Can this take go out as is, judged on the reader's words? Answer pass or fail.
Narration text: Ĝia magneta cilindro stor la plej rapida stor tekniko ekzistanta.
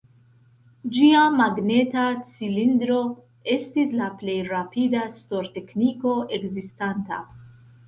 fail